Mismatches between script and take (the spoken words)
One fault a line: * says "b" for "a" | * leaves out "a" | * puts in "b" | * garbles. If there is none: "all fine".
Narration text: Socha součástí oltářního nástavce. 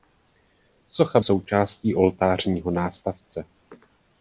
all fine